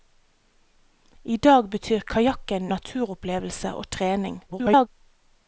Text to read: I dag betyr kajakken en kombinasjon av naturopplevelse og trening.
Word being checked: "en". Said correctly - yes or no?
no